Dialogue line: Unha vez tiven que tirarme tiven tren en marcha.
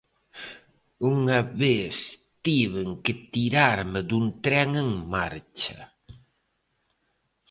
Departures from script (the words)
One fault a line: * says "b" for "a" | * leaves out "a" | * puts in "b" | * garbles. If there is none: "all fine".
* says "dun" for "tiven"